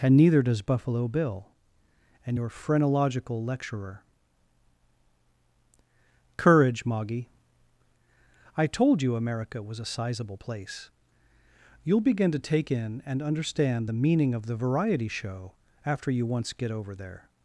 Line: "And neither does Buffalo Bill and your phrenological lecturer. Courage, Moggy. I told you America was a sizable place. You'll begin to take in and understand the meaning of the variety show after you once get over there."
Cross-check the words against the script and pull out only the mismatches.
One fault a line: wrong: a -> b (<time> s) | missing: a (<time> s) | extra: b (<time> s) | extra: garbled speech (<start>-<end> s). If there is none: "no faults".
no faults